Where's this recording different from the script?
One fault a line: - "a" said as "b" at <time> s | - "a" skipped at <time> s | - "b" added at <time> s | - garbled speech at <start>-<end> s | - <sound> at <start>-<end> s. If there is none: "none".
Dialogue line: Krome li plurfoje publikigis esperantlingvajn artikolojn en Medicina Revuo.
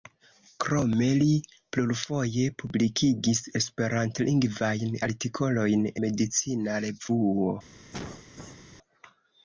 - "en" skipped at 5.9 s
- cough at 7.9-8.6 s